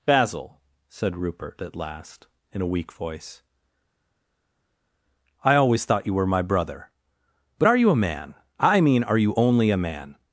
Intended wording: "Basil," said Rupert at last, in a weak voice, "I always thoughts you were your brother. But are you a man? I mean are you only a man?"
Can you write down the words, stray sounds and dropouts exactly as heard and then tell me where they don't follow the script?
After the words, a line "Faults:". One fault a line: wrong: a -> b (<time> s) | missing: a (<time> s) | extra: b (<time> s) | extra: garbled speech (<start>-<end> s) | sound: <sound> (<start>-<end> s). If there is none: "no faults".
"Basil," said Rupert at last, in a weak voice, "I always thought you were my brother. But are you a man? I mean are you only a man?"
Faults:
wrong: thoughts -> thought (5.8 s)
wrong: your -> my (6.3 s)